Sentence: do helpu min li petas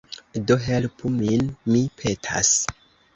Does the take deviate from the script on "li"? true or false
true